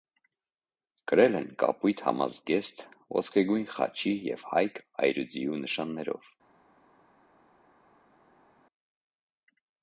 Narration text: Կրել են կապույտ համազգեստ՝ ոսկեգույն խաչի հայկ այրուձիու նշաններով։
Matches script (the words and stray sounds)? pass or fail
fail